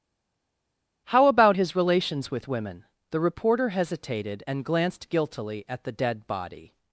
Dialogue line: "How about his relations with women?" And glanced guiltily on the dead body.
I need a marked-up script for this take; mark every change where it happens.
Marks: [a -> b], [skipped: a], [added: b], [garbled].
"How about his relations with women?" [added: The reporter hesitated] And glanced guiltily [on -> at] the dead body.